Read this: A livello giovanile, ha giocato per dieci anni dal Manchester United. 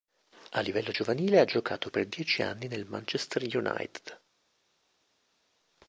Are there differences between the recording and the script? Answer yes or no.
yes